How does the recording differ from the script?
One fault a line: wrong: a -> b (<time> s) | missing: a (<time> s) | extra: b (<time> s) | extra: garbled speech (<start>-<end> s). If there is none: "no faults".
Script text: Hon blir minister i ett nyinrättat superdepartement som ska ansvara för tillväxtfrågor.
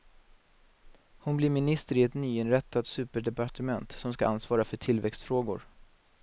no faults